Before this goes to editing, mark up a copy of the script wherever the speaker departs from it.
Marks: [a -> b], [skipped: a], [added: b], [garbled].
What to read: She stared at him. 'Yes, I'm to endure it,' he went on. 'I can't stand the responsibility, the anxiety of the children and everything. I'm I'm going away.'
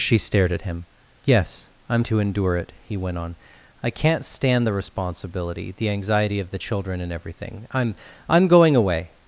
She stared at him. 'Yes, I'm to endure it,' he went on. 'I can't stand the responsibility, the anxiety of the children and everything. I'm I'm going away.'